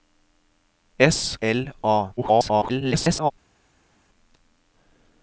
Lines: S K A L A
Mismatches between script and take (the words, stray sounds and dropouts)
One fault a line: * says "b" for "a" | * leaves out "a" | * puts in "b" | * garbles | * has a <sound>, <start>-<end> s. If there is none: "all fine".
* leaves out "K A"
* garbles